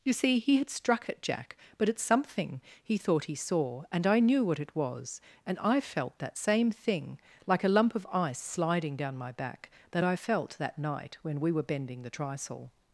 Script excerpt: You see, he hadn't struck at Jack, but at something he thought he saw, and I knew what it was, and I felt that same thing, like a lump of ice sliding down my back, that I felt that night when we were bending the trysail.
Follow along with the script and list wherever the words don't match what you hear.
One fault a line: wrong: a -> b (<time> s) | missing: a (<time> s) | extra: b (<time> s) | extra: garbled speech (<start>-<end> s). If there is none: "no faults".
wrong: hadn't -> had (0.6 s)